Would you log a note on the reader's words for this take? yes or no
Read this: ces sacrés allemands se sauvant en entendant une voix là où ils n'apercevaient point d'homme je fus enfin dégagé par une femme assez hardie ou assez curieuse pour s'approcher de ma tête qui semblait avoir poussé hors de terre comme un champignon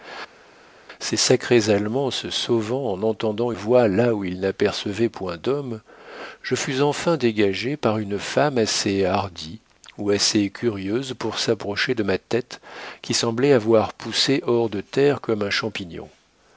yes